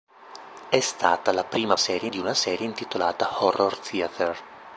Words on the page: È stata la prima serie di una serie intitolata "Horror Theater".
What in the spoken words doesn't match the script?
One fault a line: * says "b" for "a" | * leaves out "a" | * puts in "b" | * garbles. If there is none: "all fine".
all fine